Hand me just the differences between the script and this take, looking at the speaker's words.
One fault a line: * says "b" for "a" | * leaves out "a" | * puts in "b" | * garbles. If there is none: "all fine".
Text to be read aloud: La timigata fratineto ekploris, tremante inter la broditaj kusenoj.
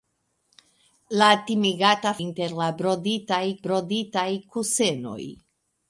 * leaves out "fratineto ekploris tremante"
* puts in "broditaj"